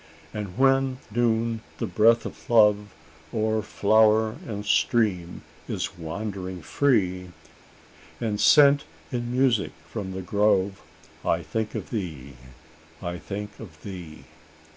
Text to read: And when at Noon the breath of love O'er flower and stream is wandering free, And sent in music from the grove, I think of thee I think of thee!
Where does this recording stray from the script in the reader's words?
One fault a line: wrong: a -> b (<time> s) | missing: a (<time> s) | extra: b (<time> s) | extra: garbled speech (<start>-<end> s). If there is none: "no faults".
missing: at (1.0 s)